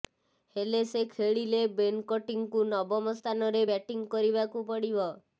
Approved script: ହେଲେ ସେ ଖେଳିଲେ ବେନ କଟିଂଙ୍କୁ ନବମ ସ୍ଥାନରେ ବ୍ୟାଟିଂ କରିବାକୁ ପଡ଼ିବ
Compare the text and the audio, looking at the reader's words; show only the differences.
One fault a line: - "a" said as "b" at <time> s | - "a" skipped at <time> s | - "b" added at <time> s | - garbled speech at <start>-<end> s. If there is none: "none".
none